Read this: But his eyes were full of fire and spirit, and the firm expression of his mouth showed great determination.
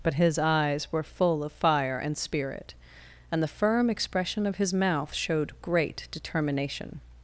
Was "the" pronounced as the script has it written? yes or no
yes